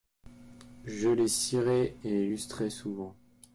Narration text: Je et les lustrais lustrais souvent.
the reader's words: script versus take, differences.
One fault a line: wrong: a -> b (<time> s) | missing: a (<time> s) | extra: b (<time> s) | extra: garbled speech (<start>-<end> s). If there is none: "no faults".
extra: les cirais (1.1 s)
missing: lustrais (2.7 s)